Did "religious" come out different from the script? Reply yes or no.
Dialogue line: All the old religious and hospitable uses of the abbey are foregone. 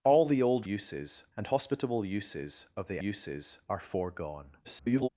yes